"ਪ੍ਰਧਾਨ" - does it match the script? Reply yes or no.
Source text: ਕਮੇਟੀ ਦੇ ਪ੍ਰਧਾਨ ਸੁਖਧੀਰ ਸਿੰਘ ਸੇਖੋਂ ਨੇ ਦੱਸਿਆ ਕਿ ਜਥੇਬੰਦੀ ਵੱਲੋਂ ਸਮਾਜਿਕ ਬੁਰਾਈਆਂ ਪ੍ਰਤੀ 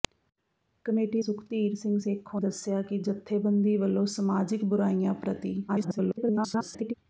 no